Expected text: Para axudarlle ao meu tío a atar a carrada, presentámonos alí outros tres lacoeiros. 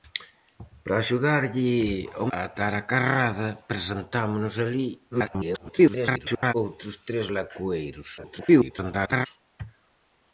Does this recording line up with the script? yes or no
no